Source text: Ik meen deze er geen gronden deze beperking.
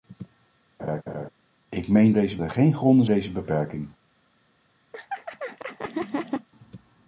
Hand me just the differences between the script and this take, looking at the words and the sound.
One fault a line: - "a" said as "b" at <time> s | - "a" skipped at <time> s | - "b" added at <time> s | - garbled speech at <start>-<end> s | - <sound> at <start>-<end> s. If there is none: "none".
- laugh at 0.8-1.3 s
- laugh at 4.9-6.5 s